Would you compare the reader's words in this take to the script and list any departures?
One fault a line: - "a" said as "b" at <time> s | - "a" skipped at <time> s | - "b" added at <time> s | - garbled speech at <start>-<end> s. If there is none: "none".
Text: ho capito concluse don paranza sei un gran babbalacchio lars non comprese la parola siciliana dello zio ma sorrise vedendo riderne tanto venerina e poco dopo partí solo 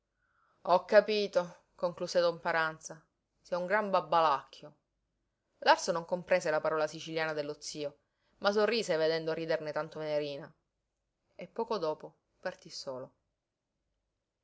none